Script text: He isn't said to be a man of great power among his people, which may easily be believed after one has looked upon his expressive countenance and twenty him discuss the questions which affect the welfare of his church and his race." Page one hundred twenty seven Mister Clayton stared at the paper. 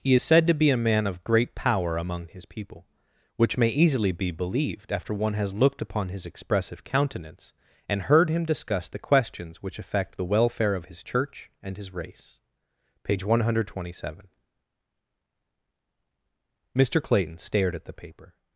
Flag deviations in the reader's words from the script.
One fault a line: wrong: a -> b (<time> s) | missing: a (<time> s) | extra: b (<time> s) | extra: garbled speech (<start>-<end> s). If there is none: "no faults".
wrong: isn't -> is (0.1 s)
wrong: twenty -> heard (8.0 s)